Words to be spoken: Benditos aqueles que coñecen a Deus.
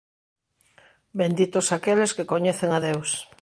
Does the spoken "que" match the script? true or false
true